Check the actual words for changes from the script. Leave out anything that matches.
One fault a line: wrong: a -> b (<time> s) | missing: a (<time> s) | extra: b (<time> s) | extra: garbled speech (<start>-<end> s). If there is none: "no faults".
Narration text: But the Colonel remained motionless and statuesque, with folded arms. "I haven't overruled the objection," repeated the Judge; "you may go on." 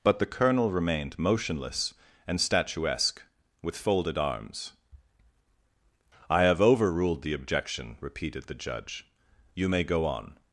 wrong: haven't -> have (6.4 s)